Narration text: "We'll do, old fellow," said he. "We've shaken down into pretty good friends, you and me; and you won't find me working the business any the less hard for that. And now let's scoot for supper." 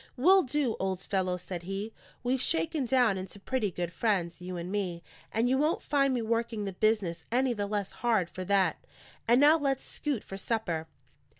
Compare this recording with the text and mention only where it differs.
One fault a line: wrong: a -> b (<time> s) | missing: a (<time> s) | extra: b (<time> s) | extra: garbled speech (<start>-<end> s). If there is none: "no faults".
no faults